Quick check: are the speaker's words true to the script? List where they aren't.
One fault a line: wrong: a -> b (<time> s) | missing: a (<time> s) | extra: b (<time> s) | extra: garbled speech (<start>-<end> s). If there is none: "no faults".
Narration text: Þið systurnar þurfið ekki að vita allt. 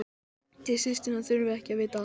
no faults